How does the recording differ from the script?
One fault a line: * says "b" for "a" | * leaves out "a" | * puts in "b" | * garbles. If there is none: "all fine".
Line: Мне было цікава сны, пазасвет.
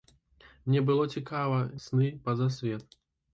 all fine